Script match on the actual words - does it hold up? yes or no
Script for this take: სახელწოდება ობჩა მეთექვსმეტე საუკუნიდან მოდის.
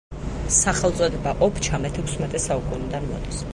yes